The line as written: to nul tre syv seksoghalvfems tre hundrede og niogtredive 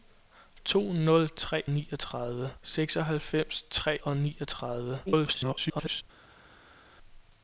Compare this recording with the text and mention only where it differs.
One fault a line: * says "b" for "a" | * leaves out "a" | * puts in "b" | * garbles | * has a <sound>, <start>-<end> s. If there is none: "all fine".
* says "niogtredive" for "syv"
* leaves out "hundrede"
* garbles